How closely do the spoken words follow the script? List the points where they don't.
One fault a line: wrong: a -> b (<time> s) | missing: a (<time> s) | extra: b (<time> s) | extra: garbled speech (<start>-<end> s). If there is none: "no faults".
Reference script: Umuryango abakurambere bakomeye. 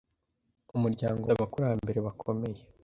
no faults